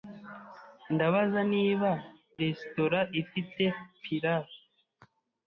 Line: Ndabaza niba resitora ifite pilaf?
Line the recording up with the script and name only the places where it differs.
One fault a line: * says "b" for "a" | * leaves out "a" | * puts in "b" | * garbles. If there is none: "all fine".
all fine